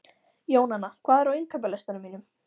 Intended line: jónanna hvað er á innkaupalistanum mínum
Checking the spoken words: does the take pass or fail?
pass